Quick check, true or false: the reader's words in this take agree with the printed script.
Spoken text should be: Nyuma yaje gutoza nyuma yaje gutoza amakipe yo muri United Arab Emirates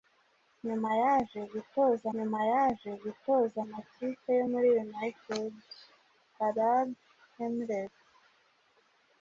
true